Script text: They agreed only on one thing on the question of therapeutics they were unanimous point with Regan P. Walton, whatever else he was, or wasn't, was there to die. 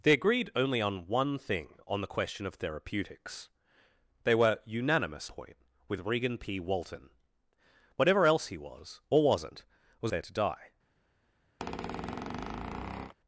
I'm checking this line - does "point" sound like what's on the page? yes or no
yes